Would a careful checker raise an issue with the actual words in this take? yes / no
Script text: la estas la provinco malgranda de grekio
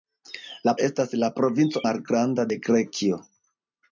no